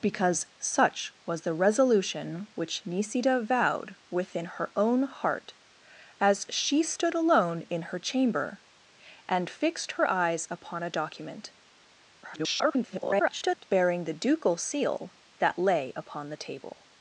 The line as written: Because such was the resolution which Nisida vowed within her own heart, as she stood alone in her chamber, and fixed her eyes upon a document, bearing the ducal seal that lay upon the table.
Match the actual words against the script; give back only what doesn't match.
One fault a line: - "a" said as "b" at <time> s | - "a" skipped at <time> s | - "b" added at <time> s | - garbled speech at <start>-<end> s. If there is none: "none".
- garbled speech at 12.2-13.6 s